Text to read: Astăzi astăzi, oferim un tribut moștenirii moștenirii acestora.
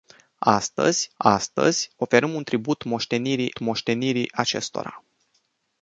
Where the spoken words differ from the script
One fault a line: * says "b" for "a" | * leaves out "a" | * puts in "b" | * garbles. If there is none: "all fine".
all fine